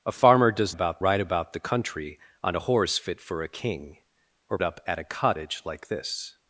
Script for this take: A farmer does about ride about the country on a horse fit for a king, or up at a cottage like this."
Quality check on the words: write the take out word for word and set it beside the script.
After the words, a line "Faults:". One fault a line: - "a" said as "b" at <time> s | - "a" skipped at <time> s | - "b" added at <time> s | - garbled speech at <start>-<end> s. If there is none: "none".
A farmer does about ride about the country on a horse fit for a king, or up at a cottage like this."
Faults:
none